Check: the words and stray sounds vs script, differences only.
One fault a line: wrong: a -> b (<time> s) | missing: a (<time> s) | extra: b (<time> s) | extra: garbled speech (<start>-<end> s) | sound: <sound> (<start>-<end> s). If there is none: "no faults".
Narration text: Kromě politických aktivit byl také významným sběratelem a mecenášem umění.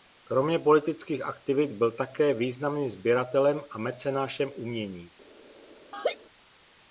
sound: laugh (5.9-6.2 s)